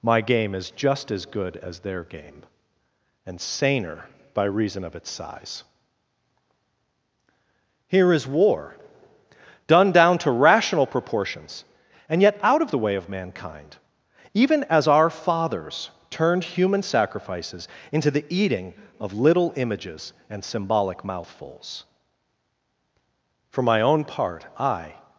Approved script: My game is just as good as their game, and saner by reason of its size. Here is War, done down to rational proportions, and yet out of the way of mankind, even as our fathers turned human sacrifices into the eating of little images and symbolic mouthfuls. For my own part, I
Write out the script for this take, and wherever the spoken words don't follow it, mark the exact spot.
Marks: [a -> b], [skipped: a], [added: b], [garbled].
My game is just as good as their game, and saner by reason of its size. Here is War, done down to rational proportions, and yet out of the way of mankind, even as our fathers turned human sacrifices into the eating of little images and symbolic mouthfuls. For my own part, I